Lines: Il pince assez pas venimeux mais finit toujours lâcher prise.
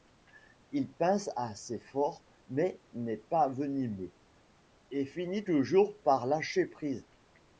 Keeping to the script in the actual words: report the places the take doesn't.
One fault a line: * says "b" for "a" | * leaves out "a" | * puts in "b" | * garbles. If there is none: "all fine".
* puts in "fort mais n'est"
* says "et" for "mais"
* puts in "par"